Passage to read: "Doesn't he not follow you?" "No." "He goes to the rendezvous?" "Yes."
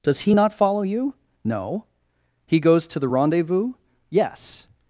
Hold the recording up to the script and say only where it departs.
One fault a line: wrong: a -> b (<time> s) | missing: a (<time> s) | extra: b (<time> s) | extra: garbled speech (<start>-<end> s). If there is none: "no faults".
wrong: Doesn't -> Does (0.0 s)